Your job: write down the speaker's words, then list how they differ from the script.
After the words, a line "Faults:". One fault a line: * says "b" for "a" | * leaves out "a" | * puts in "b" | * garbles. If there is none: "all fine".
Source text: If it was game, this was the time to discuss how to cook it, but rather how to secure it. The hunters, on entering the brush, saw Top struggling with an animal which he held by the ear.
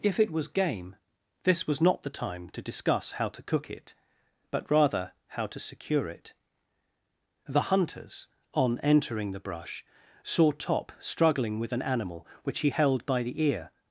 If it was game, this was not the time to discuss how to cook it, but rather how to secure it. The hunters, on entering the brush, saw Top struggling with an animal which he held by the ear.
Faults:
* puts in "not"